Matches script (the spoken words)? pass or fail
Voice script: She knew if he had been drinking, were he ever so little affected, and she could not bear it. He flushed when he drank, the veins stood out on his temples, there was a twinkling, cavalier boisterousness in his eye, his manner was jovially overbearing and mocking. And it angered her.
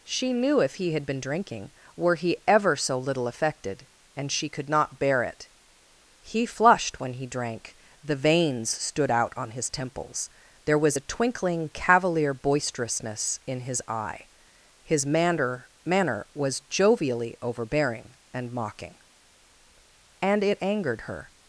fail